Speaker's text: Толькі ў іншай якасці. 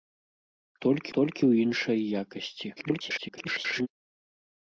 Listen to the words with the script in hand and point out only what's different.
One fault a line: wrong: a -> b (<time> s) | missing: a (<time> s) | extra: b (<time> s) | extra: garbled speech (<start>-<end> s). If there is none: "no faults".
extra: толькі (1.2 s)
extra: garbled speech (2.8-3.9 s)